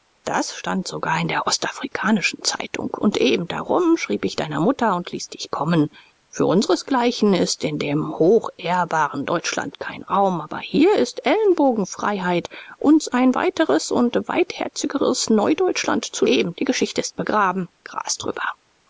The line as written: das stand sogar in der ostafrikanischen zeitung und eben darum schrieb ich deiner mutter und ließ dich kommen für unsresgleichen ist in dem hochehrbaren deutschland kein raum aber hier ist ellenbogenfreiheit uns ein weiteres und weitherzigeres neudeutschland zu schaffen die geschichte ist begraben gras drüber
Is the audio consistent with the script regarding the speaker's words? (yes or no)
no